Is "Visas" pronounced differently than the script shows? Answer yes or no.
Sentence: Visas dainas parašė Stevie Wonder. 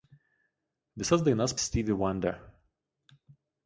no